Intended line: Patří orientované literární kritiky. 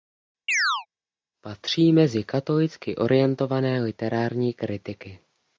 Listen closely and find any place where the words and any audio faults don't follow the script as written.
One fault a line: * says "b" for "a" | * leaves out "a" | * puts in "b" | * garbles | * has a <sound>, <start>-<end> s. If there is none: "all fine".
* has a chirp, 0.5-0.9 s
* puts in "mezi katolicky"